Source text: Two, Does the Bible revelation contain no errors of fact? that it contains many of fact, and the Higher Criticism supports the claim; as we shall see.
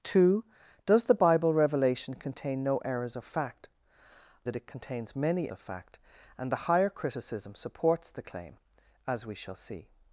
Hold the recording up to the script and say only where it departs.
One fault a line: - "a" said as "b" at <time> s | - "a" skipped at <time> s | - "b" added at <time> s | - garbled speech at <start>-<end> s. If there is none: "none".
none